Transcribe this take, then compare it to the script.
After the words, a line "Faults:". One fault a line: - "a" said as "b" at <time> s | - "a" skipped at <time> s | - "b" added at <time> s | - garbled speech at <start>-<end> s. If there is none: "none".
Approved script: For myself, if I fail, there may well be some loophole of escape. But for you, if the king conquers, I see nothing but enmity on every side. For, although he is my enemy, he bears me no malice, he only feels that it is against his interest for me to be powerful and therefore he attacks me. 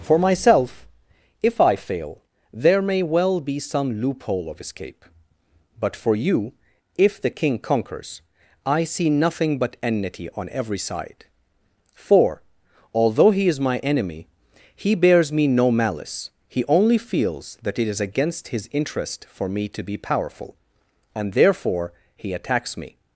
For myself, if I fail, there may well be some loophole of escape. But for you, if the king conquers, I see nothing but enmity on every side. For, although he is my enemy, he bears me no malice, he only feels that it is against his interest for me to be powerful and therefore he attacks me.
Faults:
none